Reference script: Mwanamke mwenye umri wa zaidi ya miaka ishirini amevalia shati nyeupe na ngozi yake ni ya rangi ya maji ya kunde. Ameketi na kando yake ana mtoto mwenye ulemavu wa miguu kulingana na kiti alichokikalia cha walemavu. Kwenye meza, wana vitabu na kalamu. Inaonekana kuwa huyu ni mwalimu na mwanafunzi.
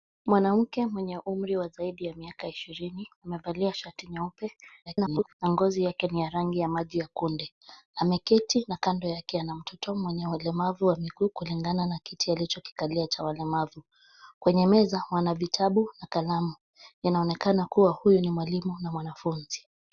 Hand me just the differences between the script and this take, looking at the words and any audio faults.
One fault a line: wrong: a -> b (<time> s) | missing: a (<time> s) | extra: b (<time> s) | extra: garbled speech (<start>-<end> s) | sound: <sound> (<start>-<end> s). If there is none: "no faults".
extra: garbled speech (4.9-5.3 s)